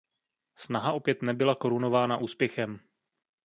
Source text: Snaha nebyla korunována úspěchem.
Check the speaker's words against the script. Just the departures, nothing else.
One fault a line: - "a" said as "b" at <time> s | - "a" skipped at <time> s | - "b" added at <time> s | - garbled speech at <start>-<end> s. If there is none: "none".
- "opět" added at 0.9 s